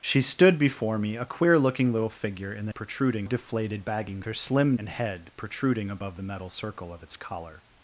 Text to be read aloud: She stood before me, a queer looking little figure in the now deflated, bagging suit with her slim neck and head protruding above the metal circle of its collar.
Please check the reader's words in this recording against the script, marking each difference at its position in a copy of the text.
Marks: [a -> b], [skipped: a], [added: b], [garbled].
She stood before me, a queer looking little figure in the [now -> protruding] deflated, bagging [skipped: suit with] her slim [skipped: neck] and head protruding above the metal circle of its collar.